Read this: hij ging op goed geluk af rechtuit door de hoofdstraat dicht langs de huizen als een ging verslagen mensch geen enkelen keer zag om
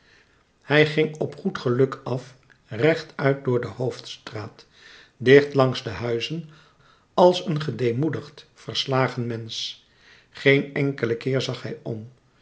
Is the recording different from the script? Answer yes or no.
yes